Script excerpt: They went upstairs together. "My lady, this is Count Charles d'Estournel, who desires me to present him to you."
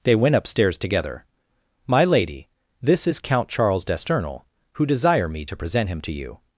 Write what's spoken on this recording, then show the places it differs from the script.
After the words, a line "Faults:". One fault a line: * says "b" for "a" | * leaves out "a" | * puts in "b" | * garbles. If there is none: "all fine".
They went upstairs together. "My lady, this is Count Charles d'Estournel, who desire me to present him to you."
Faults:
* says "desire" for "desires"